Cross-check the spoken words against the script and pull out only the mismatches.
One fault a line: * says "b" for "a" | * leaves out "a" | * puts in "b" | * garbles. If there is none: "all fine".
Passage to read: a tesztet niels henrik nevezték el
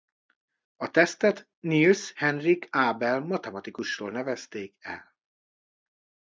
* puts in "abel matematikusról"